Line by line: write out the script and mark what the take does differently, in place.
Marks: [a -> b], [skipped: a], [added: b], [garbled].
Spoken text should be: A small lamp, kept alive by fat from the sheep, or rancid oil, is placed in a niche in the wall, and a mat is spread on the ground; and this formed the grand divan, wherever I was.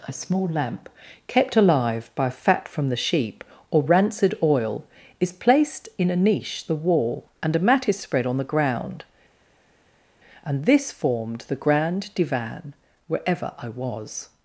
A small lamp, kept alive by fat from the sheep, or rancid oil, is placed in a niche [skipped: in] the wall, and a mat is spread on the ground; and this formed the grand divan, wherever I was.